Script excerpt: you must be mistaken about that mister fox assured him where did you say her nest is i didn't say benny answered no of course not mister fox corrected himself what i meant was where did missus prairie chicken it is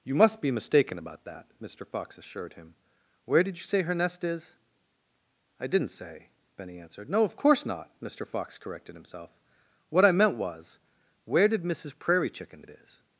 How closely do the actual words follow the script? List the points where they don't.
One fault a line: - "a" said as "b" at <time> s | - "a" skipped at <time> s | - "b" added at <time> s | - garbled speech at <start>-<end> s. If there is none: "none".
none